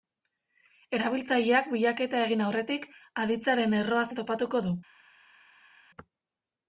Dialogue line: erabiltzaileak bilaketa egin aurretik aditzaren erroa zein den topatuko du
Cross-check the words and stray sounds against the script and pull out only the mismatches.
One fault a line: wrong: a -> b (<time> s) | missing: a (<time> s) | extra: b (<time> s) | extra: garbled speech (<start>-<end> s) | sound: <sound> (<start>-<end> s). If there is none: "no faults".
missing: zein (4.1 s)